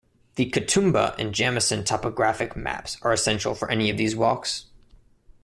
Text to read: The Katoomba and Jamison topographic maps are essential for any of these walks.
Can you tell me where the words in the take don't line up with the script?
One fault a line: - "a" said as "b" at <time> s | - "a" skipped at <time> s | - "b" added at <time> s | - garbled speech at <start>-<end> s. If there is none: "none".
none